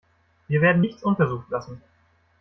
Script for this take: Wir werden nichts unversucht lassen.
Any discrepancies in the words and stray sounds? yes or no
no